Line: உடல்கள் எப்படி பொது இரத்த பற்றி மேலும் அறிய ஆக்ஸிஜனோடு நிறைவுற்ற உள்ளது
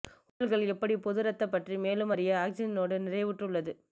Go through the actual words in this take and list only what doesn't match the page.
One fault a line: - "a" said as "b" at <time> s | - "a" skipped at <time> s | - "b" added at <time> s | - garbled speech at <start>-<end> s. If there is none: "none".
none